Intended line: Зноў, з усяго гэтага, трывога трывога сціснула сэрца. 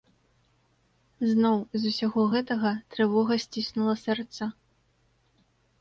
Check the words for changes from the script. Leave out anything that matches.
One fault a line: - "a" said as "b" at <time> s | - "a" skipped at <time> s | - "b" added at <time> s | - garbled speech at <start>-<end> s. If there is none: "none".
- "трывога" skipped at 3.3 s